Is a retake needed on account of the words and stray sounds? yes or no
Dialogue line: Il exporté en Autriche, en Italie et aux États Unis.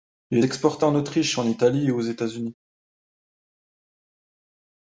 no